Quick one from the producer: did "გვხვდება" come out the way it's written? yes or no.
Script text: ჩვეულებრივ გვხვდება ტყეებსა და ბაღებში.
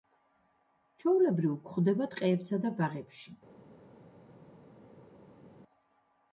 yes